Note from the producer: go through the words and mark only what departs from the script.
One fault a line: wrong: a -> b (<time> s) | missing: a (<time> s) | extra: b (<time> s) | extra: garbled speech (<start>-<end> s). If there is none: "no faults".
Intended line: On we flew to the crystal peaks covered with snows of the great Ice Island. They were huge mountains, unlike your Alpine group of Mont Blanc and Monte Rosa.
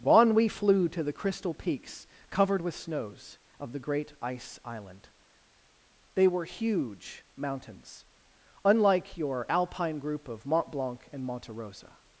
no faults